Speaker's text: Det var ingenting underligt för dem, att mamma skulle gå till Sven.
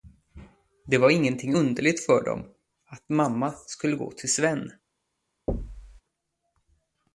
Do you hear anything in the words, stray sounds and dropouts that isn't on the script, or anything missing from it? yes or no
yes